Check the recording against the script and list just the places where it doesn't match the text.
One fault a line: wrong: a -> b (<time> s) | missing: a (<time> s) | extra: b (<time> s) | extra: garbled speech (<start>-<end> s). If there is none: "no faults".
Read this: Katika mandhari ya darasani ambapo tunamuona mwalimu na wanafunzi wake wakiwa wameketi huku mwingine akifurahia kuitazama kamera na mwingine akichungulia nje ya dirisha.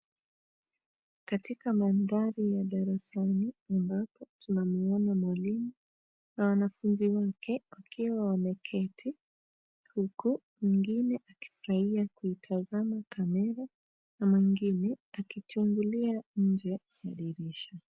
no faults